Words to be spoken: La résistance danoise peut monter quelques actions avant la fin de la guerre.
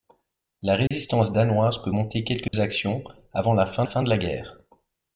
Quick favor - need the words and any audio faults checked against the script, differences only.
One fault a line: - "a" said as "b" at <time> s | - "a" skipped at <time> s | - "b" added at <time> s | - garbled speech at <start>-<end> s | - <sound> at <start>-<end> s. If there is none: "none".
- dropout at 0.9-0.9 s
- dropout at 2.5-2.5 s
- "fin" added at 3.8 s